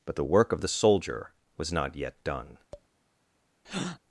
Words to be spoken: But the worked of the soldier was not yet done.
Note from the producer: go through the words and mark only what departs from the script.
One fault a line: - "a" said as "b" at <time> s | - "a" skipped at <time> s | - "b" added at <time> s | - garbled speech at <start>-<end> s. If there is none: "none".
- "worked" said as "work" at 0.2 s